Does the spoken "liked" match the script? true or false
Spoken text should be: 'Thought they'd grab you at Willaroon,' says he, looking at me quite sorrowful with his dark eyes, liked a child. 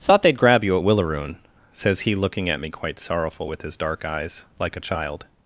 false